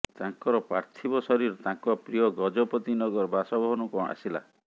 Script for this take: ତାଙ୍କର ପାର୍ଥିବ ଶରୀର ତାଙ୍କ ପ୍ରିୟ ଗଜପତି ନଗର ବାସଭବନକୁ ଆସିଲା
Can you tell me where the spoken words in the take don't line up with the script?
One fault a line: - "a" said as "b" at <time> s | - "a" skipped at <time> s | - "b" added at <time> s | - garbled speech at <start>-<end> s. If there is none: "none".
none